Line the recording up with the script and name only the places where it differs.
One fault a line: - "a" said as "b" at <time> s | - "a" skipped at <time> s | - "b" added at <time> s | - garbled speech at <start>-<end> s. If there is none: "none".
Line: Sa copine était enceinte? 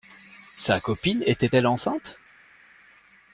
- "elle" added at 1.5 s